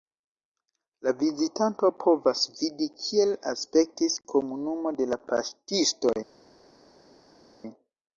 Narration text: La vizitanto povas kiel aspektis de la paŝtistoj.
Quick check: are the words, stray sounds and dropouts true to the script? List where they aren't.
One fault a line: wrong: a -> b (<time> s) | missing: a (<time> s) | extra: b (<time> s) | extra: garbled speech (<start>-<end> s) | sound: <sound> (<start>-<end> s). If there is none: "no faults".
extra: vidi (2.6 s)
extra: komunumo (4.3 s)